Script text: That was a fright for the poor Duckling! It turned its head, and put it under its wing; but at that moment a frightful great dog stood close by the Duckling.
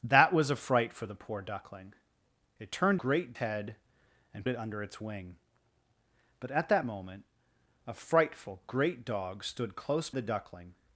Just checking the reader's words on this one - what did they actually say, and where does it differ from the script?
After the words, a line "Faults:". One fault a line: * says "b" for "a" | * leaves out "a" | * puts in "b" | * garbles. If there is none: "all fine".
That was a fright for the poor Duckling! It turned great head, and it under its wing; but at that moment a frightful great dog stood close the Duckling.
Faults:
* says "great" for "its"
* leaves out "put"
* leaves out "by"